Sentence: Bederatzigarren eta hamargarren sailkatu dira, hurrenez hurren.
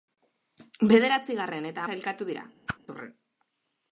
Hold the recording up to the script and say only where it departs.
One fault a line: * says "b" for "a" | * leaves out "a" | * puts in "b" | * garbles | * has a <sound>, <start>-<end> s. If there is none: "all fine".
* leaves out "hamargarren"
* leaves out "hurrenez"
* has a whoosh, 2.7-2.8 s